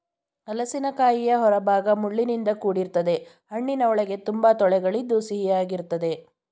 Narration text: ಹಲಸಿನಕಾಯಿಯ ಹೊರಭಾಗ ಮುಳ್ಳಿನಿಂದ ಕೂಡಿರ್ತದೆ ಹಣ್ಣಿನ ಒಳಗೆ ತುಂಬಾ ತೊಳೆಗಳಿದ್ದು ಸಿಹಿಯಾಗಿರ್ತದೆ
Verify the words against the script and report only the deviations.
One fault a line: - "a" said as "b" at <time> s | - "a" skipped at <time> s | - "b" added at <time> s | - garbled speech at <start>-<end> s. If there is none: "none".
none